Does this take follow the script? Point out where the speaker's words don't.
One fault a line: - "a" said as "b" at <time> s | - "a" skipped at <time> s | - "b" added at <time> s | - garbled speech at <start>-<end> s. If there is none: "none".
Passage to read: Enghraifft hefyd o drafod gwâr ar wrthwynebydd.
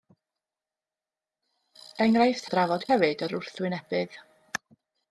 - "hefyd" skipped at 2.5 s
- "gwâr" said as "hefyd" at 2.9 s